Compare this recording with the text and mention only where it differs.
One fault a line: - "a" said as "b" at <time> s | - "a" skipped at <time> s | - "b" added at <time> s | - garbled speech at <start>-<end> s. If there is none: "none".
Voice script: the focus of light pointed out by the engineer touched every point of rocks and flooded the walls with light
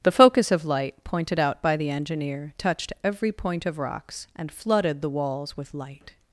none